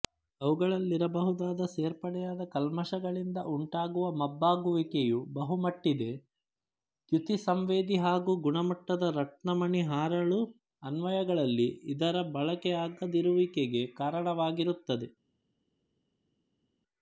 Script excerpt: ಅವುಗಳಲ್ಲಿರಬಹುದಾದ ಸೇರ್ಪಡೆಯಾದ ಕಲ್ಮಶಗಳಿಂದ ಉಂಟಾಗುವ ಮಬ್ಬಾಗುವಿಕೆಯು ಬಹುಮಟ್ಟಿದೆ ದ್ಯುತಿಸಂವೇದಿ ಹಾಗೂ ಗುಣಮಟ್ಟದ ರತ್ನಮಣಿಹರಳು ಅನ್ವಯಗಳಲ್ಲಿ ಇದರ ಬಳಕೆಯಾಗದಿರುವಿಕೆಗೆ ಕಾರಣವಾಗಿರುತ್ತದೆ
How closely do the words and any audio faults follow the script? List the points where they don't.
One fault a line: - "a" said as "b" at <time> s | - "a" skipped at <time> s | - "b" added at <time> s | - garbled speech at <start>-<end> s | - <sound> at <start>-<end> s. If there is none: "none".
none